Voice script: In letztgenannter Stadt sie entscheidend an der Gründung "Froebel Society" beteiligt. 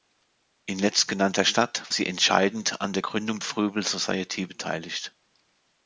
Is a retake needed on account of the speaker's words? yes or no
no